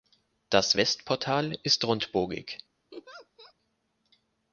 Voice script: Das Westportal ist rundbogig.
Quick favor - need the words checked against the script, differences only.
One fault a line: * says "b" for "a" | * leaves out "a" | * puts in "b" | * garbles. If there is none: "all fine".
all fine